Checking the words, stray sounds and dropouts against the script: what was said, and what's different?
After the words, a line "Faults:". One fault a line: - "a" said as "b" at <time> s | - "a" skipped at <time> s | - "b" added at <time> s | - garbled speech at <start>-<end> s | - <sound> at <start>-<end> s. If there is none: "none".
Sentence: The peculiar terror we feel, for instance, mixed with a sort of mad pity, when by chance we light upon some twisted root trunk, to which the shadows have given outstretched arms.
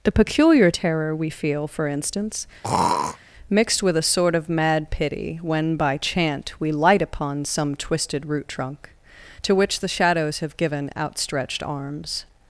The peculiar terror we feel, for instance, mixed with a sort of mad pity, when by chant we light upon some twisted root trunk, to which the shadows have given outstretched arms.
Faults:
- throat clearing at 2.6-3.2 s
- "chance" said as "chant" at 6.0 s